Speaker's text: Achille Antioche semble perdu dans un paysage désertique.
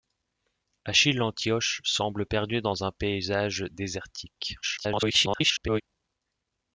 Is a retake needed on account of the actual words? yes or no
yes